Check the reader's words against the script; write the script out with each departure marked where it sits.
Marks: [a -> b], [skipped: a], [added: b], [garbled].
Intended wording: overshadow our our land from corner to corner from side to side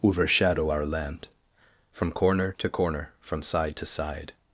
overshadow our [skipped: our] land from corner to corner from side to side